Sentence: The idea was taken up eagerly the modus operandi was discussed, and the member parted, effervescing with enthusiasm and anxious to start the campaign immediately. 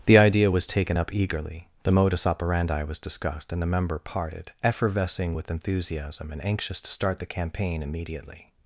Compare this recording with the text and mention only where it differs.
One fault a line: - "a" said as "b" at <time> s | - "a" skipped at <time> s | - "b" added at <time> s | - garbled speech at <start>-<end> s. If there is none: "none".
none